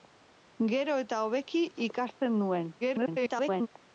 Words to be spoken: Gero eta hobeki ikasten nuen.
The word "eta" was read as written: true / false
true